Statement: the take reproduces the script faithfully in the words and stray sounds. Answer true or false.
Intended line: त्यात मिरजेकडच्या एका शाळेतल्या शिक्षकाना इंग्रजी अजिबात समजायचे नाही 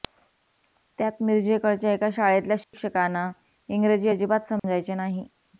false